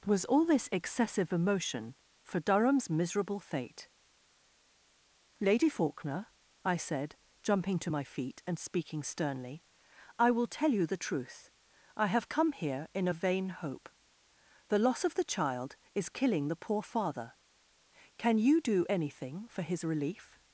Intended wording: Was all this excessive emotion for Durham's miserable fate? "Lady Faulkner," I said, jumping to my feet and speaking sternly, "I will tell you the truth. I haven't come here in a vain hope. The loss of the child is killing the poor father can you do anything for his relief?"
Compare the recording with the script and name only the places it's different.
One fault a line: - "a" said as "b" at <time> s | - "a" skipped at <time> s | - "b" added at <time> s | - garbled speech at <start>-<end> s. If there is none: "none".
- "haven't" said as "have" at 12.1 s